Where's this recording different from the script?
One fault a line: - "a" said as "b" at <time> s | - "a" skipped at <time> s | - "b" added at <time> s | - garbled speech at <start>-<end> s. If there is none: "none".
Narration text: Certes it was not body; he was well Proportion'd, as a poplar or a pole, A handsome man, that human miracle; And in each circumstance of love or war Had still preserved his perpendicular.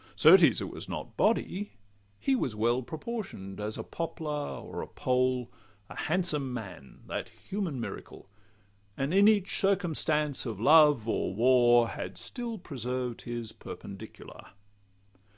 none